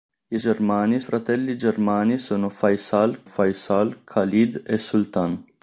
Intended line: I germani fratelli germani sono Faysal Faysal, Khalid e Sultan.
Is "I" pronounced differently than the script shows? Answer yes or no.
no